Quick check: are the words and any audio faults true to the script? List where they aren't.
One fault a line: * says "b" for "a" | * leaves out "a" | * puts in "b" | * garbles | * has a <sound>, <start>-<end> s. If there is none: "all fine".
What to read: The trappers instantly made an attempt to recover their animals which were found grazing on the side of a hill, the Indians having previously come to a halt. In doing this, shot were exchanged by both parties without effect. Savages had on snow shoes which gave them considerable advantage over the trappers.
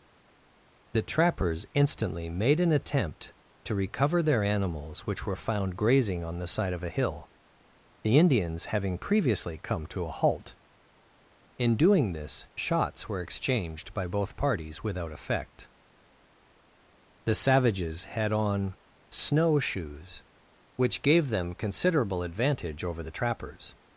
* says "shots" for "shot"
* puts in "The"